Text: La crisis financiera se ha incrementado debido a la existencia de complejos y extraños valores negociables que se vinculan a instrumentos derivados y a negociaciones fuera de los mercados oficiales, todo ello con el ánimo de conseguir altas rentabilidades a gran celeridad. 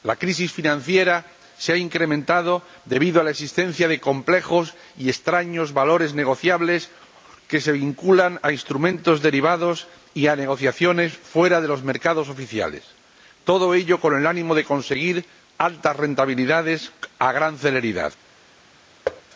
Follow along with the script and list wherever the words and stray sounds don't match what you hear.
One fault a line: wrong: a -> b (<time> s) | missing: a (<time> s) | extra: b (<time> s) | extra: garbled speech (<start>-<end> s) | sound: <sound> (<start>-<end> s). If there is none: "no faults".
sound: thud (19.1-19.2 s)